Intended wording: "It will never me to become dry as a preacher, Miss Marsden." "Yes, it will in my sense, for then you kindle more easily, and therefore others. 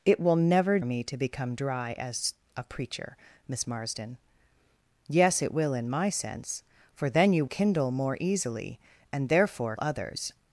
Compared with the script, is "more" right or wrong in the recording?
right